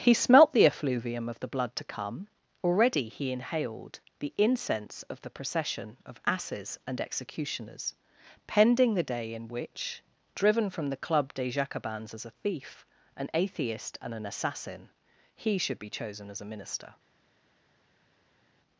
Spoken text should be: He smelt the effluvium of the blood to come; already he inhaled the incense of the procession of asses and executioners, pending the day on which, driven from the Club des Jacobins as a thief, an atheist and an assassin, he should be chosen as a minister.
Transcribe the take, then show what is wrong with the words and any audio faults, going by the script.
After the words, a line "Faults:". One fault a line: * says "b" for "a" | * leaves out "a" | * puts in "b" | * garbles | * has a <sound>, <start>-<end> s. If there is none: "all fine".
He smelt the effluvium of the blood to come; already he inhaled the incense of the procession of asses and executioners, pending the day in which, driven from the Club des Jacobins as a thief, an atheist and an assassin, he should be chosen as a minister.
Faults:
* says "in" for "on"